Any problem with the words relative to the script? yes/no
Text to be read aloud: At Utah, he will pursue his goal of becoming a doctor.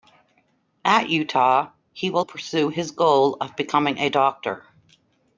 no